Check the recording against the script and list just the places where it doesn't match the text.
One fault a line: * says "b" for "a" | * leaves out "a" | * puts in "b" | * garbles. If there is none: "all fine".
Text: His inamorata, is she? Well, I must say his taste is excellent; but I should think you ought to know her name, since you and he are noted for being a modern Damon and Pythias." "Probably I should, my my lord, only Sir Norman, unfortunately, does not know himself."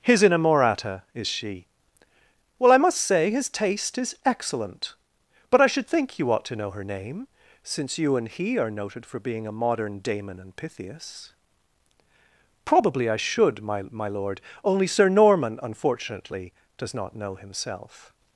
all fine